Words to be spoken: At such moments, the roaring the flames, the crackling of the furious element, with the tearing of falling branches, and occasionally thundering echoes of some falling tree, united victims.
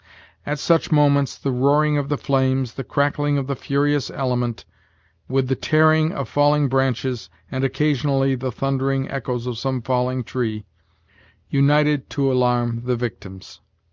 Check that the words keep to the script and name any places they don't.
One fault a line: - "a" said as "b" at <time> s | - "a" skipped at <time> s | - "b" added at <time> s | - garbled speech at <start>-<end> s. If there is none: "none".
- "of" added at 1.9 s
- "the" added at 8.3 s
- "to alarm the" added at 12.1 s